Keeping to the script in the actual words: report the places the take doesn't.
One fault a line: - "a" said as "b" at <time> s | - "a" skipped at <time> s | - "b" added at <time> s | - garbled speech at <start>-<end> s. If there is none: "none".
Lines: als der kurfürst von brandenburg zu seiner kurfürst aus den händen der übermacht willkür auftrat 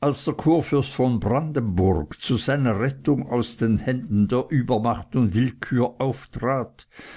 - "kurfürst" said as "rettung" at 2.8 s
- "und" added at 5.2 s